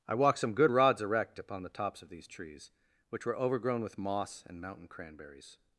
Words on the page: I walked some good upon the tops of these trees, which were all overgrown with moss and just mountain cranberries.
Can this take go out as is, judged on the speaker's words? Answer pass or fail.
fail